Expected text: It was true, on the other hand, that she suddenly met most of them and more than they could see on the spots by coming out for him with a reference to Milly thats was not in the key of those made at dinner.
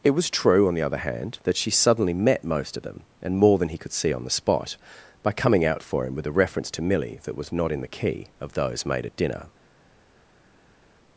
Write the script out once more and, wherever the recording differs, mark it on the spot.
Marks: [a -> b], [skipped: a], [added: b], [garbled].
It was true, on the other hand, that she suddenly met most of them and more than [they -> he] could see on the [spots -> spot] by coming out for him with a reference to Milly [thats -> that] was not in the key of those made at dinner.